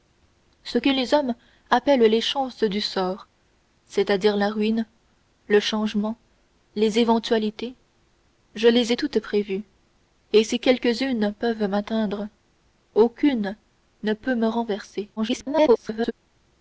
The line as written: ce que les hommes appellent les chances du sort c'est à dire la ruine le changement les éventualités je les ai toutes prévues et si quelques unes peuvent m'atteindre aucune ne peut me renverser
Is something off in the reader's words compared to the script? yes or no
yes